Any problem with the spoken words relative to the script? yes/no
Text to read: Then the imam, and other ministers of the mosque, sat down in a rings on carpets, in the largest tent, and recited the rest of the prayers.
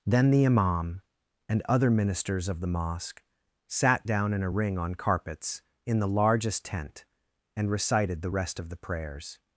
yes